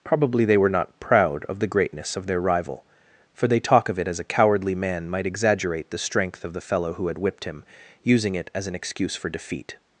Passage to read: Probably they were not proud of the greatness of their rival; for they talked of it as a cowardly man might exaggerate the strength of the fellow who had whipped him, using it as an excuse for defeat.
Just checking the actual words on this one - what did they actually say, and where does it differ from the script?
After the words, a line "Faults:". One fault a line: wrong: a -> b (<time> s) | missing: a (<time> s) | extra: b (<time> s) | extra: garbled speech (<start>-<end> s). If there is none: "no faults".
Probably they were not proud of the greatness of their rival; for they talk of it as a cowardly man might exaggerate the strength of the fellow who had whipped him, using it as an excuse for defeat.
Faults:
wrong: talked -> talk (3.6 s)